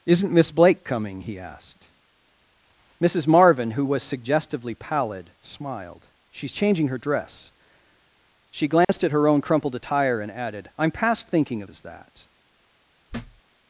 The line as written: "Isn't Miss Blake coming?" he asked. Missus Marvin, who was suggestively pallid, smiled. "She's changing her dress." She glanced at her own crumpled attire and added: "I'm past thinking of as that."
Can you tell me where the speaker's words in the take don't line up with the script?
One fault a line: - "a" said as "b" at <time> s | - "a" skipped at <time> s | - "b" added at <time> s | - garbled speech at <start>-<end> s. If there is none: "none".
none